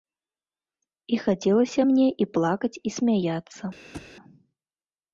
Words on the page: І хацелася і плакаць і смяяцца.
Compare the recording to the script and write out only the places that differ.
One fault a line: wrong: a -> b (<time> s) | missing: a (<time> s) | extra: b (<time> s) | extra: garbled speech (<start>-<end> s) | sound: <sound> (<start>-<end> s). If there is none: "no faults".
extra: мне (1.9 s)
sound: thud (3.9-4.1 s)